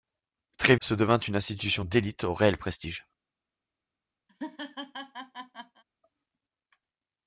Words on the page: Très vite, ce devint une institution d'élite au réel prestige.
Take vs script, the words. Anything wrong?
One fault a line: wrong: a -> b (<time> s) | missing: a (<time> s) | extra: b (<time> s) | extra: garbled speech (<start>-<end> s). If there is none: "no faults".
missing: vite (0.8 s)